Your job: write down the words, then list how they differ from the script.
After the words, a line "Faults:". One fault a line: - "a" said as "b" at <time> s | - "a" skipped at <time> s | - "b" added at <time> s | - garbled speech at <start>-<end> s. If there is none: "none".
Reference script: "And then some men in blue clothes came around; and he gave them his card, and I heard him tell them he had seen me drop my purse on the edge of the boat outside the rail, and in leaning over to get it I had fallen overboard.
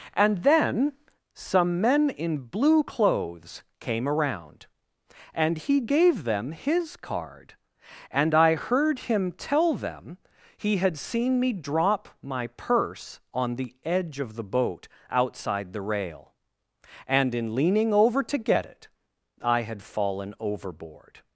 "And then some men in blue clothes came around; and he gave them his card, and I heard him tell them he had seen me drop my purse on the edge of the boat outside the rail, and in leaning over to get it I had fallen overboard.
Faults:
none